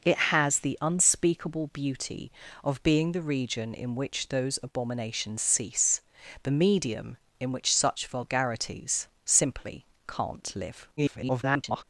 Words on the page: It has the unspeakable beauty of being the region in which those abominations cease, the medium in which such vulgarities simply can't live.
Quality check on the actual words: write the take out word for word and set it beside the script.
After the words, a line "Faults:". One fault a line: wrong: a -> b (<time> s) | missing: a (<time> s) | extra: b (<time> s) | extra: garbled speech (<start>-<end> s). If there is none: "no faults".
It has the unspeakable beauty of being the region in which those abominations cease, the medium in which such vulgarities simply can't live. [garbled]
Faults:
extra: garbled speech (11.0-11.8 s)